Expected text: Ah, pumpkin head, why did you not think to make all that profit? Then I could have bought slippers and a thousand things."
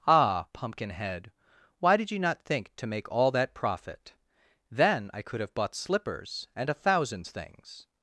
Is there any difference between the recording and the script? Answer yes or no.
no